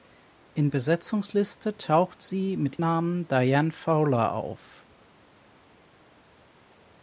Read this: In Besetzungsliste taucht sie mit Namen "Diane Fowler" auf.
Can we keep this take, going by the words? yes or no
yes